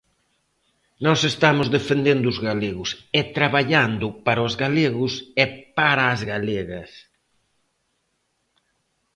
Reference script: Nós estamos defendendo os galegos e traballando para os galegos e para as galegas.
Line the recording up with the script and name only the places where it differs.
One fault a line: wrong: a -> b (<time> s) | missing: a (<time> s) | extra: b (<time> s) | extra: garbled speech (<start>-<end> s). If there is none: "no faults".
no faults